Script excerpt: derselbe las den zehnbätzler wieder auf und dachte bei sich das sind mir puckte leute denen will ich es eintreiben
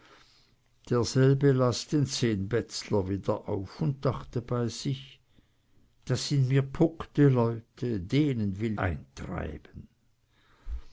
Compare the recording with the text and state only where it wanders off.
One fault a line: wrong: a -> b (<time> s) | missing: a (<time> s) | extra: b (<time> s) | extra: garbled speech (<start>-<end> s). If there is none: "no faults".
missing: ich es (8.8 s)